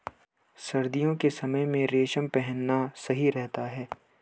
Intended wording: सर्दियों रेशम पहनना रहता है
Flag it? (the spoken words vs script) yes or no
yes